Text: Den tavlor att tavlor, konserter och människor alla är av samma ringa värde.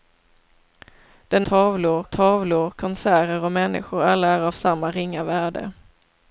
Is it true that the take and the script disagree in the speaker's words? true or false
false